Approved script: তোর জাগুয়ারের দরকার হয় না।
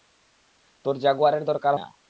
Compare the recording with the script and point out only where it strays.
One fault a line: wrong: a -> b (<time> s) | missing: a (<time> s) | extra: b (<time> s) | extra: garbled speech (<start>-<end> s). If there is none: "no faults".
missing: হয় (1.7 s)